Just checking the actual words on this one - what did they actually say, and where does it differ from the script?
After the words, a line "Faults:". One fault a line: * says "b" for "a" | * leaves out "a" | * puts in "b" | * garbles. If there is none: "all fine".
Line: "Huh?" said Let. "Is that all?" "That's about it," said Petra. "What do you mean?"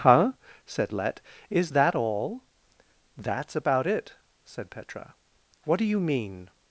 "Huh?" said Let. "Is that all?" "That's about it," said Petra. "What do you mean?"
Faults:
all fine